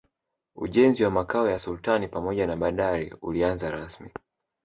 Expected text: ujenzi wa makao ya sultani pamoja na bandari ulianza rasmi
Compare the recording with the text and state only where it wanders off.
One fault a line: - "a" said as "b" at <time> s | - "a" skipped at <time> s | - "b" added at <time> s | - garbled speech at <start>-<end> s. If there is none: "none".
none